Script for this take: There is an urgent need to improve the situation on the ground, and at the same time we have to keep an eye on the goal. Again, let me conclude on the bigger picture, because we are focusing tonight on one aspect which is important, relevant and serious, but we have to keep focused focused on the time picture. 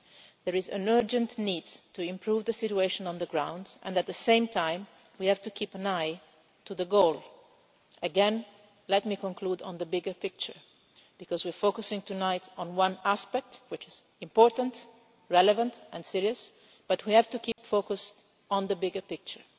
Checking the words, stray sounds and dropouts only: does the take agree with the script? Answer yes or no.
no